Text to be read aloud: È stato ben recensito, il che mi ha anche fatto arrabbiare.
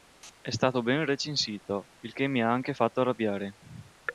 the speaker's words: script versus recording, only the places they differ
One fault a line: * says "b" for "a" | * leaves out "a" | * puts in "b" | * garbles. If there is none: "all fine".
all fine